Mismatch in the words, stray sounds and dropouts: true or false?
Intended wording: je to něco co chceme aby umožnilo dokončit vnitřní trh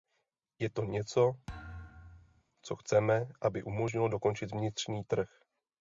true